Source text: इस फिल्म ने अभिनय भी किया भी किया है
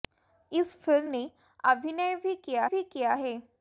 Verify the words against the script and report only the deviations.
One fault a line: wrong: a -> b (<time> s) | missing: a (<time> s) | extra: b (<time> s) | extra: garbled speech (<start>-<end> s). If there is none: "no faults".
no faults